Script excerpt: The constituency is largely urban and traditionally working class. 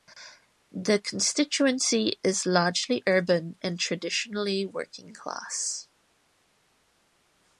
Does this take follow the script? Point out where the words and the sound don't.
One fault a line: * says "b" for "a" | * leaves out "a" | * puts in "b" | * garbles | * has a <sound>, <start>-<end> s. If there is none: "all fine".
all fine